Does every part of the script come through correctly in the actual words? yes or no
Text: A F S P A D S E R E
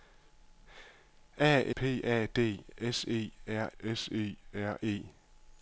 no